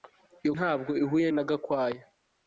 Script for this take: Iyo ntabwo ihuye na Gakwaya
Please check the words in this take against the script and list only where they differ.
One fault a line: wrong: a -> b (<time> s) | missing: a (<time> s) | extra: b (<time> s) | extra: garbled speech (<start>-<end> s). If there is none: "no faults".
no faults